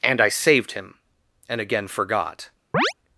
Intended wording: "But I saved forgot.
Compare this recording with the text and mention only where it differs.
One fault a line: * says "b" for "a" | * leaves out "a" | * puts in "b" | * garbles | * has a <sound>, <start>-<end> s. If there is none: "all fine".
* says "And" for "But"
* puts in "him and again"
* has a chirp, 2.7-2.9 s